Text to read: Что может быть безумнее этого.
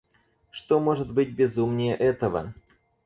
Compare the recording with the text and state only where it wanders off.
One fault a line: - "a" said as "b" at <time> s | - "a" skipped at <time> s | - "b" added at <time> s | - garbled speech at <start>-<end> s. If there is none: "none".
none